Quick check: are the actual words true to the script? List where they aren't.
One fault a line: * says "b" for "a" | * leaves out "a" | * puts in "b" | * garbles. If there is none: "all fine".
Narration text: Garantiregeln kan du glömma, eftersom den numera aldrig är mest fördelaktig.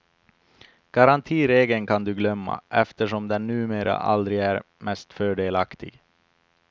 all fine